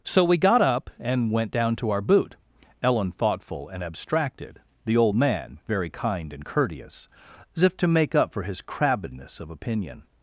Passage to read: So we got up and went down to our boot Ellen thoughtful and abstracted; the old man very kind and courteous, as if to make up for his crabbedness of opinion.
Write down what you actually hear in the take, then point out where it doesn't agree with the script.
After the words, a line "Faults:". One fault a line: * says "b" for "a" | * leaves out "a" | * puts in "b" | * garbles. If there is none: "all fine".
So we got up and went down to our boot Ellen thoughtful and abstracted; the old man very kind and courteous, as if to make up for his crabbedness of opinion.
Faults:
all fine